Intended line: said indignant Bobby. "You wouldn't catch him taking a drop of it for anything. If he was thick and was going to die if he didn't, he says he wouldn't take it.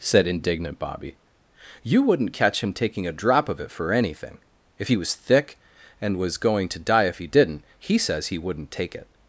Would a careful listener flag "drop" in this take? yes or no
no